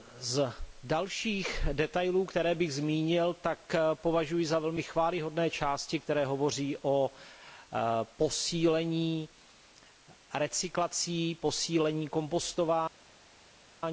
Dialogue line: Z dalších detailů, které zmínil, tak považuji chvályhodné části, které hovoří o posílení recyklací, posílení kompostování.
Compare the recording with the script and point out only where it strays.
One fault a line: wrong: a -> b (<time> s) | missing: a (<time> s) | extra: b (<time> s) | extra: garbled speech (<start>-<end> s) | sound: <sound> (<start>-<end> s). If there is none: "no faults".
extra: bych (2.5 s)
extra: za velmi (4.5 s)